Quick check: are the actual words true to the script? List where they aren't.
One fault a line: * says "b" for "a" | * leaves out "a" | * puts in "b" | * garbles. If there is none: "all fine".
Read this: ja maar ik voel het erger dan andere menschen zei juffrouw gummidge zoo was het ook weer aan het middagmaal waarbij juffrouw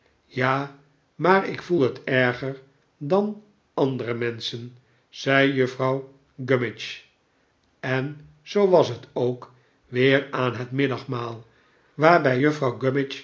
* puts in "en"